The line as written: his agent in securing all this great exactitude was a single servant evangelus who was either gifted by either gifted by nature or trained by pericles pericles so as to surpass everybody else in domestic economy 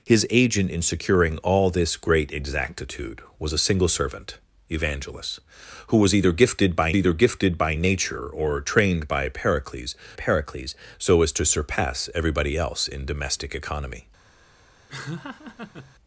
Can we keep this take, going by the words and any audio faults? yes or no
no